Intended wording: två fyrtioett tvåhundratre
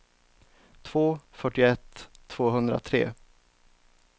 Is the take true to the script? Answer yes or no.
yes